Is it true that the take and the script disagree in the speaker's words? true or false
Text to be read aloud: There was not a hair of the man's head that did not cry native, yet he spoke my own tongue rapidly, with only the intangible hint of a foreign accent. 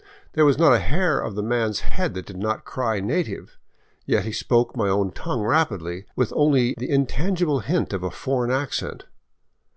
false